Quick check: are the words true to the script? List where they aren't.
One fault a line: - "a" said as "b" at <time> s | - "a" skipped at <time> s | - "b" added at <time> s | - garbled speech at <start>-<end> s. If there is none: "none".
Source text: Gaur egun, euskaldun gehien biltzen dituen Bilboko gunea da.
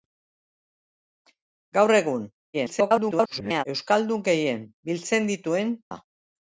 - garbled speech at 2.5-3.6 s
- "Bilboko gunea" skipped at 5.7 s